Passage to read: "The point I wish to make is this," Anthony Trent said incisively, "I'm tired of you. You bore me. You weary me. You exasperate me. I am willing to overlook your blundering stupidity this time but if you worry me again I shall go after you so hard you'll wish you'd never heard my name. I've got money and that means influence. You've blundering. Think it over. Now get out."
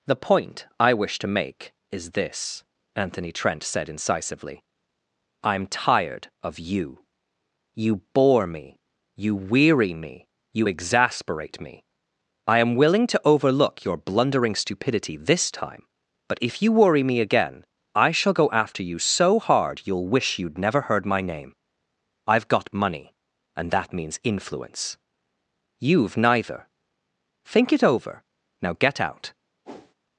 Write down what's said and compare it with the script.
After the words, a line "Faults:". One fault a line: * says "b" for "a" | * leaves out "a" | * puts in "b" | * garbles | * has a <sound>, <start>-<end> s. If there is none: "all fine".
"The point I wish to make is this," Anthony Trent said incisively, "I'm tired of you. You bore me. You weary me. You exasperate me. I am willing to overlook your blundering stupidity this time but if you worry me again I shall go after you so hard you'll wish you'd never heard my name. I've got money and that means influence. You've neither. Think it over. Now get out."
Faults:
* says "neither" for "blundering"
* has a whoosh, 29.6-29.9 s